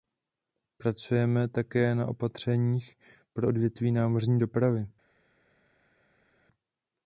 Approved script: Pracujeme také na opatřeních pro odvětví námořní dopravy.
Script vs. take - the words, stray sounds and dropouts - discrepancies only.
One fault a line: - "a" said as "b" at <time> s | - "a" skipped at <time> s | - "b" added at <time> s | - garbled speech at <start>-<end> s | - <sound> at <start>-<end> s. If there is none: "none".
none